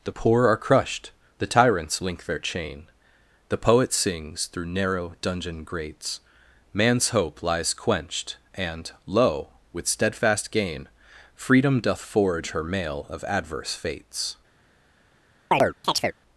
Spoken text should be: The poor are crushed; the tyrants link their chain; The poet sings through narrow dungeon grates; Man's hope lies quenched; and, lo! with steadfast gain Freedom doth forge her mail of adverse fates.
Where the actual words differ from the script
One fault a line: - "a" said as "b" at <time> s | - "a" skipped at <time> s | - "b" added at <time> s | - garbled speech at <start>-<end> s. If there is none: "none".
none